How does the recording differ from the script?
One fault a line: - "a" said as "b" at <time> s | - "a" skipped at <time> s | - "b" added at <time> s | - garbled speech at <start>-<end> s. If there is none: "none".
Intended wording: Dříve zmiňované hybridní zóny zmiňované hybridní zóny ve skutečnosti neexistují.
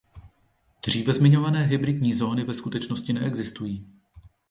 - "zmiňované hybridní zóny" skipped at 2.4 s